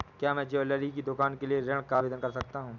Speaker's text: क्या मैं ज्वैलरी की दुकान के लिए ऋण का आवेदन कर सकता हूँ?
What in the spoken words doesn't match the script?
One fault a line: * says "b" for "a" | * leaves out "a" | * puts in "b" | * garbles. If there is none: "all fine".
all fine